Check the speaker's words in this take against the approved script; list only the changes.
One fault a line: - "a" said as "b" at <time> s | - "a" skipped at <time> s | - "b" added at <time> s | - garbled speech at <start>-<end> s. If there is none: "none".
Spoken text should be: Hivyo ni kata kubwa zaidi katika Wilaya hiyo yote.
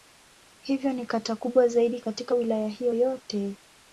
none